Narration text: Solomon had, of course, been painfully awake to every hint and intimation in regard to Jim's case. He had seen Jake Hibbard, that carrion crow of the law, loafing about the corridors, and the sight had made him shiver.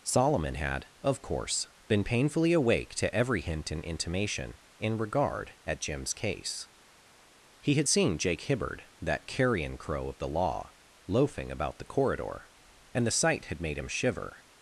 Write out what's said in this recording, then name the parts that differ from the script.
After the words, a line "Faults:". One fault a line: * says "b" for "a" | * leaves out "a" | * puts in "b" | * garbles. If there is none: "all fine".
Solomon had, of course, been painfully awake to every hint and intimation in regard at Jim's case. He had seen Jake Hibbard, that carrion crow of the law, loafing about the corridor, and the sight had made him shiver.
Faults:
* says "at" for "to"
* says "corridor" for "corridors"